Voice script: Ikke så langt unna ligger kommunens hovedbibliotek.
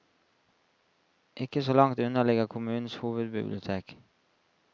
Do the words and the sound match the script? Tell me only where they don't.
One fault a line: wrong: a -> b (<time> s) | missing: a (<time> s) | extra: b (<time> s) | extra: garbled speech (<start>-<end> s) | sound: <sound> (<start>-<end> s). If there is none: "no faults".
no faults